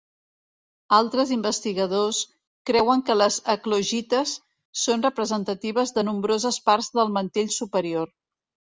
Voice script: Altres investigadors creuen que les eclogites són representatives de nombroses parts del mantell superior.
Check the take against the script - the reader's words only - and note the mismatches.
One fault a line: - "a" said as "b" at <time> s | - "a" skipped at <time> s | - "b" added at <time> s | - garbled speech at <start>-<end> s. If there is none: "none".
none